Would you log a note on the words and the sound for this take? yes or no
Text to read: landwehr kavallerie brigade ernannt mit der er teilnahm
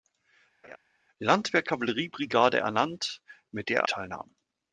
yes